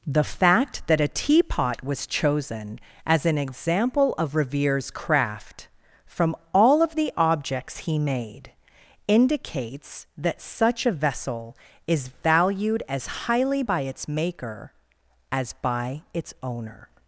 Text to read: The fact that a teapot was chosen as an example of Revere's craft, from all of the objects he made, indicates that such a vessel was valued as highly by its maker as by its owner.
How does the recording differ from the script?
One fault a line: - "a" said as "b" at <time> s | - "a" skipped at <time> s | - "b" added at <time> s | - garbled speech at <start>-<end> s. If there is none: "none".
- "was" said as "is" at 11.9 s